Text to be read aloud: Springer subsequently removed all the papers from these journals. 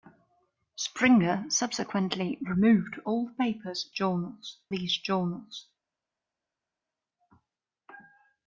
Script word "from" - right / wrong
wrong